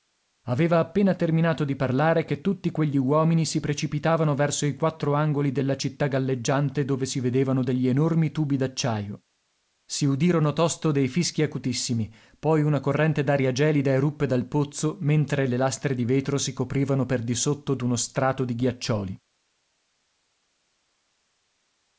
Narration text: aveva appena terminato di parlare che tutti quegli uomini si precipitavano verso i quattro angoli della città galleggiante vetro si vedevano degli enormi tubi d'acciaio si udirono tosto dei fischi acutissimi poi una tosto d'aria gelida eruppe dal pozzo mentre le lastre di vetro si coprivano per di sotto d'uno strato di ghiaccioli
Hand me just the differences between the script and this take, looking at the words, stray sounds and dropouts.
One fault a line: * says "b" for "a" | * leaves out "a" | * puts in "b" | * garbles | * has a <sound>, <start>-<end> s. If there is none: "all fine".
* says "dove" for "vetro"
* says "corrente" for "tosto"